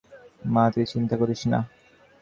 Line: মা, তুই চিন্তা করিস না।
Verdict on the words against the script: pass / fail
pass